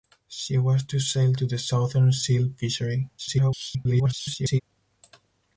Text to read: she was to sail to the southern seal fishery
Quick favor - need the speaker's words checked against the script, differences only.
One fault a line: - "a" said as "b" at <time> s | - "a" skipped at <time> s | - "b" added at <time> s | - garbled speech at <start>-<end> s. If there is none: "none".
- garbled speech at 3.2-4.6 s